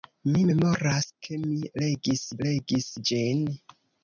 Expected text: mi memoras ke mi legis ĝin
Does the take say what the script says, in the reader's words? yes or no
no